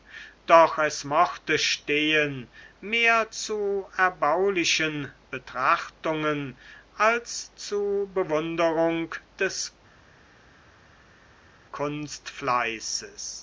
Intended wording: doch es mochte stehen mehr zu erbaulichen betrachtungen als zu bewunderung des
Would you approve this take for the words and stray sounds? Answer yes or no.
yes